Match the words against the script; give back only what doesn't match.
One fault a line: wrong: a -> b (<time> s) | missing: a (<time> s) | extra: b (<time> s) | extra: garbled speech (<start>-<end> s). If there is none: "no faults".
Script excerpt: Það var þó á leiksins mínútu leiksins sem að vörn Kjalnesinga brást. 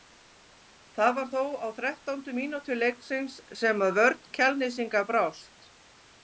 wrong: leiksins -> þrettándu (1.8 s)